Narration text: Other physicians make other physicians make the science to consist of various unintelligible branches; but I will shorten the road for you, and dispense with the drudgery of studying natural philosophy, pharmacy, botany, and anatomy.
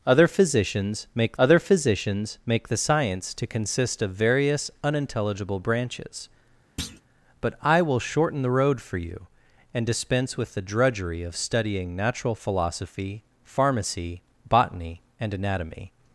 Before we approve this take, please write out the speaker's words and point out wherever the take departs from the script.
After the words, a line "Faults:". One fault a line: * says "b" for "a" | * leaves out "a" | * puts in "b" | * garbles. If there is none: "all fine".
Other physicians make other physicians make the science to consist of various unintelligible branches; but I will shorten the road for you, and dispense with the drudgery of studying natural philosophy, pharmacy, botany, and anatomy.
Faults:
all fine